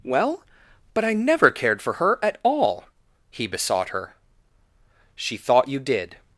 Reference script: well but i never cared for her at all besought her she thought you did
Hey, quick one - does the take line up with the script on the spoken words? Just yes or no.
no